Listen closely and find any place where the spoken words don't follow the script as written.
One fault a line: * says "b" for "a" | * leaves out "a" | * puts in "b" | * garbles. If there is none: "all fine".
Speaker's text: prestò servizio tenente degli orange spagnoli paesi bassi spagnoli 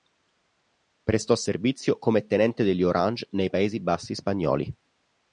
* puts in "come"
* says "nei" for "spagnoli"